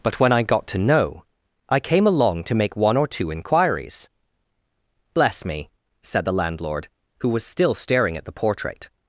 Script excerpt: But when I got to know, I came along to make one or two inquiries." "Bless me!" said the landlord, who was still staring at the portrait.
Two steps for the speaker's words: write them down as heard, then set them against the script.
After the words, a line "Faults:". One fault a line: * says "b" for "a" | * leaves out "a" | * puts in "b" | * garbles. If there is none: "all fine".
But when I got to know, I came along to make one or two inquiries." "Bless me!" said the landlord, who was still staring at the portrait.
Faults:
all fine